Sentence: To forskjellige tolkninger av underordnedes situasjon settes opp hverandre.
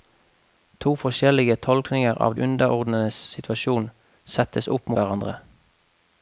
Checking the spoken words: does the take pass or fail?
pass